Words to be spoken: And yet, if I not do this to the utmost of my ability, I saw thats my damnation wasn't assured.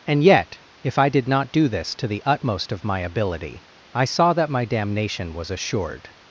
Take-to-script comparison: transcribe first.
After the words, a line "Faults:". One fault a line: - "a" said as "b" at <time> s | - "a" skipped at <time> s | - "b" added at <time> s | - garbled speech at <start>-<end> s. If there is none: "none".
And yet, if I did not do this to the utmost of my ability, I saw that my damnation was assured.
Faults:
- "did" added at 1.1 s
- "thats" said as "that" at 4.3 s
- "wasn't" said as "was" at 5.3 s